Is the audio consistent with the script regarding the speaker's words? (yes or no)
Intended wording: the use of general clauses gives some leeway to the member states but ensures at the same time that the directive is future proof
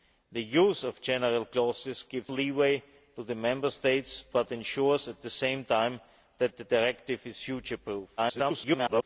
no